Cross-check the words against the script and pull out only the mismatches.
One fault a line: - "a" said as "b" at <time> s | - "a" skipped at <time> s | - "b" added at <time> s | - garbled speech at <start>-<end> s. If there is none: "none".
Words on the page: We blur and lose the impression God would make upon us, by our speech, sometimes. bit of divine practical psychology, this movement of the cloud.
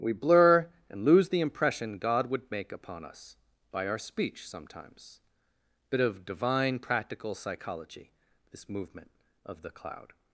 none